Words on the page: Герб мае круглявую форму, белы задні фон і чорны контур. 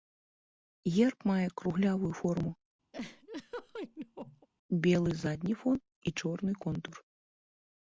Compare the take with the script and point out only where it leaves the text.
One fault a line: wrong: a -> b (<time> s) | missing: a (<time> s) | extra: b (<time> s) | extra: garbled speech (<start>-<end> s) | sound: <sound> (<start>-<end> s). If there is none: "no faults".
sound: laugh (2.9-4.5 s)